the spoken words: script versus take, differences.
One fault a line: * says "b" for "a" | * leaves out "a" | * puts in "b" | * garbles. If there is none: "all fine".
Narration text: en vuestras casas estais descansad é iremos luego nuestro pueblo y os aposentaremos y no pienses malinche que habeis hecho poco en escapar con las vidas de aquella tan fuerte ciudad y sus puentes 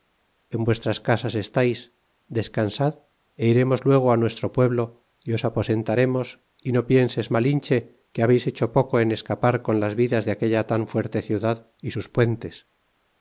all fine